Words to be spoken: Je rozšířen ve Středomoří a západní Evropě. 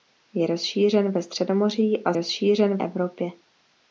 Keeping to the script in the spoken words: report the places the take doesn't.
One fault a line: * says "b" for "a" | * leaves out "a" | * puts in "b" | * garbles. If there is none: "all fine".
* says "rozšířen" for "západní"